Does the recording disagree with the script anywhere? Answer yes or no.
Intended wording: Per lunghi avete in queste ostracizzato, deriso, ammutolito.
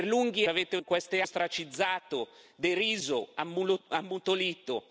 no